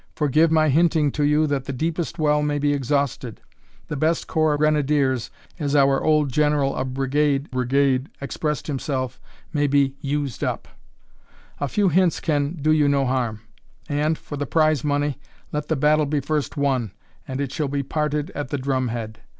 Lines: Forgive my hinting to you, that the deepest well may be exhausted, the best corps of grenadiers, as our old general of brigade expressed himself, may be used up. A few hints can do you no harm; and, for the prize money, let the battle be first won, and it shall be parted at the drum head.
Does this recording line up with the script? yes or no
no